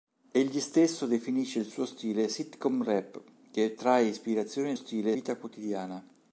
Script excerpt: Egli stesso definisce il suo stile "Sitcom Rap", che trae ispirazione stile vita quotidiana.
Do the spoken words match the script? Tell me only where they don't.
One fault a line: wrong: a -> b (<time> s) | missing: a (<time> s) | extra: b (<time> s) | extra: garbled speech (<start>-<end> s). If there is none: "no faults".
no faults